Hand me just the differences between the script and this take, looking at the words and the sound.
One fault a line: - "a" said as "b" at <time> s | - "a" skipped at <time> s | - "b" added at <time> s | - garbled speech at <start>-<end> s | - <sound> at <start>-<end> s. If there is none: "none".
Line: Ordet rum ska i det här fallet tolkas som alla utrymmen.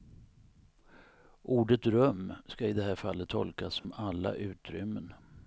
- dropout at 3.8-3.8 s